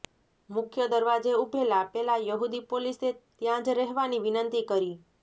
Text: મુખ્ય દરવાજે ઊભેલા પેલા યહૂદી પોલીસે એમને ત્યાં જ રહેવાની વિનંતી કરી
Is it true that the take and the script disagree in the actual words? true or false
true